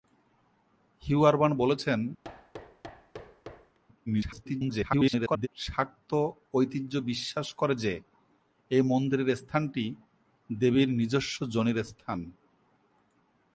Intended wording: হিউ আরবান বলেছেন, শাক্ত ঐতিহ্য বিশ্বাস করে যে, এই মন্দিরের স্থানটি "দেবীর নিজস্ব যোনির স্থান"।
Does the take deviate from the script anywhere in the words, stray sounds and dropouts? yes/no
yes